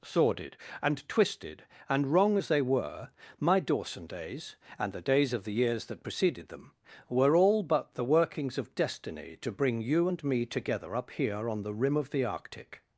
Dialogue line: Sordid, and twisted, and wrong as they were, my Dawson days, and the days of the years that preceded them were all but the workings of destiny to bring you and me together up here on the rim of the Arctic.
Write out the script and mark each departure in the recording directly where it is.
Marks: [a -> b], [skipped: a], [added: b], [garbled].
Sordid, and twisted, and wrong as they were, my Dawson days, and the days of the years that preceded them were all but the workings of destiny to bring you and me together up here on the rim of the Arctic.